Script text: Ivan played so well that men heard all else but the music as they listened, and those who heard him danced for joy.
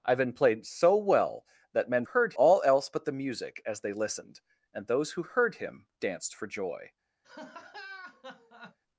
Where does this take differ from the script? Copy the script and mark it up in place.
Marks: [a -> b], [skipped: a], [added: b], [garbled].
Ivan played so well that men heard all else but the music as they listened, and those who heard him danced for joy.